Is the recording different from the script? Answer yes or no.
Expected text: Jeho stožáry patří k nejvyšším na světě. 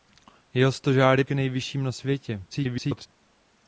yes